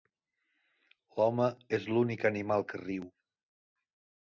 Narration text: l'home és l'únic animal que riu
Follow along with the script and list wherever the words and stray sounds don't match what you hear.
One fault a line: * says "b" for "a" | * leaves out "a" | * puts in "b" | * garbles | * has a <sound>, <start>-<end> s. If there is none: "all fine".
all fine